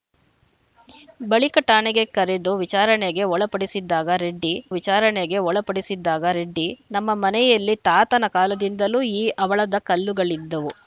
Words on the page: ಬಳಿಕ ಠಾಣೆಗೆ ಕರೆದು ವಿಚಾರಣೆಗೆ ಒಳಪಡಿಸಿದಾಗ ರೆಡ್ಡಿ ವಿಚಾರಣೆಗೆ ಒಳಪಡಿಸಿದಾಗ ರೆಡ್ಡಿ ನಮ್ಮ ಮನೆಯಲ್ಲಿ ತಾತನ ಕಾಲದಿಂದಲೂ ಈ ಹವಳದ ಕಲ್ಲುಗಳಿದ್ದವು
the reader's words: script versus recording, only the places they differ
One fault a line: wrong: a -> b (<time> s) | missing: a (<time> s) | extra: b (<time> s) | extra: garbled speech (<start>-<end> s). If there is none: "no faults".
no faults